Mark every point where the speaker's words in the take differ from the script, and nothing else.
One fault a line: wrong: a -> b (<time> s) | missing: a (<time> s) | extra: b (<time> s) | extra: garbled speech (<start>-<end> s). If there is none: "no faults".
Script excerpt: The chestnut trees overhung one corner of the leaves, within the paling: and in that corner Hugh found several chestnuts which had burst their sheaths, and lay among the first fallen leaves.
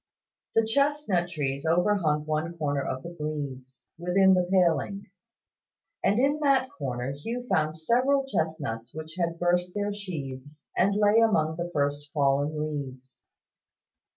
no faults